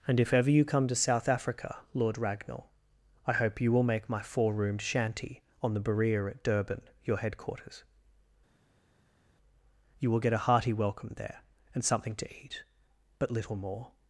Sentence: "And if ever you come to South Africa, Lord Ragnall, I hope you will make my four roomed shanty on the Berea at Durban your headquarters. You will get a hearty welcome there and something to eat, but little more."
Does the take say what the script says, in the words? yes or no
yes